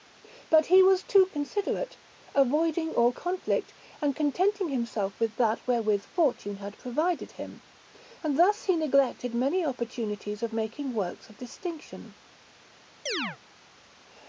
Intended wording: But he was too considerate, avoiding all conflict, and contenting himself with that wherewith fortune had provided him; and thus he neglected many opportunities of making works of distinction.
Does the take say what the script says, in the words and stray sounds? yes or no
no